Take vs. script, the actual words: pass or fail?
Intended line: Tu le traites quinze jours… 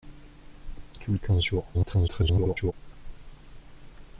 fail